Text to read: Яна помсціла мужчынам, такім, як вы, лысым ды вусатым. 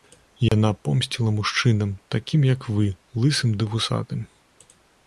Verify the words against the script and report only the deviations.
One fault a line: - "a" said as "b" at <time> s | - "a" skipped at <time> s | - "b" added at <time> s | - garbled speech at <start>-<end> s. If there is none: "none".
none